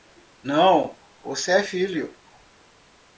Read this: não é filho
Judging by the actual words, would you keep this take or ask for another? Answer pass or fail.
fail